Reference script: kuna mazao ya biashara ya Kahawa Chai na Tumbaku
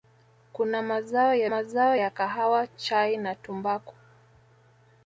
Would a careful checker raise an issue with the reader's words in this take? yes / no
yes